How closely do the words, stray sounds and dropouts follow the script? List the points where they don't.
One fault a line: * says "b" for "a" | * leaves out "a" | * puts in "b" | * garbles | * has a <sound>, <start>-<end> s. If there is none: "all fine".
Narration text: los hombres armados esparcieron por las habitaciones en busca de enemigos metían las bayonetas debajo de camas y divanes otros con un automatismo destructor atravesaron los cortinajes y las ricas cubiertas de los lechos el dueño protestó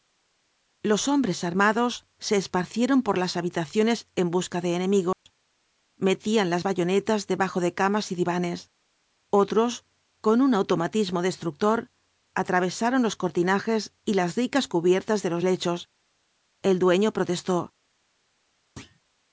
* puts in "se"
* has a dropout, 5.1-5.3 s
* has a thud, 18.8-19.0 s